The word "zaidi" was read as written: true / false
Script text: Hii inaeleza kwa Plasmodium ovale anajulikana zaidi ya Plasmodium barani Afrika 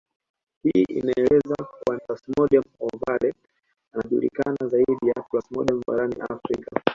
true